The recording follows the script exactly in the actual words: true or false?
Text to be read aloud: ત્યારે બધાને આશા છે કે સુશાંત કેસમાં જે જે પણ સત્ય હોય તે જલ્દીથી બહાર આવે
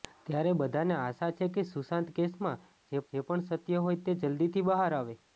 true